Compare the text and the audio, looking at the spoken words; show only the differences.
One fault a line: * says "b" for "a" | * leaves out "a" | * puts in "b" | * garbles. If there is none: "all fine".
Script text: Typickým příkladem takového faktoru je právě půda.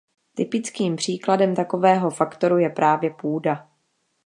all fine